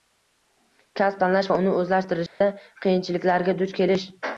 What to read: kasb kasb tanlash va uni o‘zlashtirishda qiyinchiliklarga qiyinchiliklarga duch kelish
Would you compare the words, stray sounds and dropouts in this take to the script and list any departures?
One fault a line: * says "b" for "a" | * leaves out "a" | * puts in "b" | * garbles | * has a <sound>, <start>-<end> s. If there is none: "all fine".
* leaves out "kasb"
* has a dropout, 2.3-2.4 s
* leaves out "qiyinchiliklarga"